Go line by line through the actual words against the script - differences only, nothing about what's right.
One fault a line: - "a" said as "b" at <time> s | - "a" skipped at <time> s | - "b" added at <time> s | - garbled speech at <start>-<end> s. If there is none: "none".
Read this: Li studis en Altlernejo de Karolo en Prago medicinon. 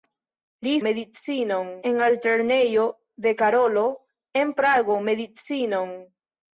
- "studis" said as "medicinon" at 0.8 s